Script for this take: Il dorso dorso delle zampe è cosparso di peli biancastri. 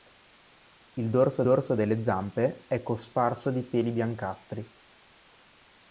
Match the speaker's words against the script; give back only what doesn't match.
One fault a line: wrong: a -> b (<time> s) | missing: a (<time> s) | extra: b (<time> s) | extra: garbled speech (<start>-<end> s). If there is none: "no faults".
no faults